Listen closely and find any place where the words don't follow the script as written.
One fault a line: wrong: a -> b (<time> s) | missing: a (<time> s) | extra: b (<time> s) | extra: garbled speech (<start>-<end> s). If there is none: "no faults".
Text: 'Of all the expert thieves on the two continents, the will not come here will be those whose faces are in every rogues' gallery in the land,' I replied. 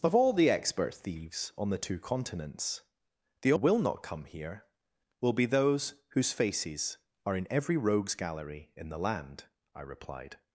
no faults